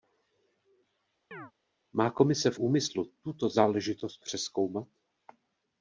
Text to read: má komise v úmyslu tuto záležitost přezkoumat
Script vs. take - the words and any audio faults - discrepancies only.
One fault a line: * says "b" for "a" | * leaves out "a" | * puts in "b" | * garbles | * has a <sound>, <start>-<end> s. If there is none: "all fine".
* has a chirp, 1.3-1.5 s